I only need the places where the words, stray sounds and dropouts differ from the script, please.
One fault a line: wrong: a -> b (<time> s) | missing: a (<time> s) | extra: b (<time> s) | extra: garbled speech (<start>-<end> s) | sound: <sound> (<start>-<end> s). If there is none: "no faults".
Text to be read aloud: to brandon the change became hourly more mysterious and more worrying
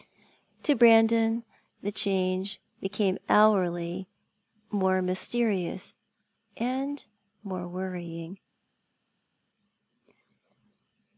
no faults